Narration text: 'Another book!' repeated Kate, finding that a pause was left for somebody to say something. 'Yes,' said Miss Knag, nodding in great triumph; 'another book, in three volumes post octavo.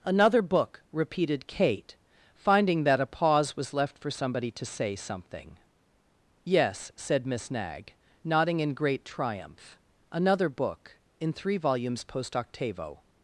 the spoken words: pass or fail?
pass